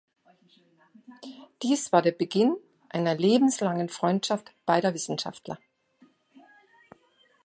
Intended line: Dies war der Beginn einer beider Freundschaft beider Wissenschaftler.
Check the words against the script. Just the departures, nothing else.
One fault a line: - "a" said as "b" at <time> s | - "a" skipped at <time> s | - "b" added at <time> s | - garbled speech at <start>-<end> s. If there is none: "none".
- "beider" said as "lebenslangen" at 3.1 s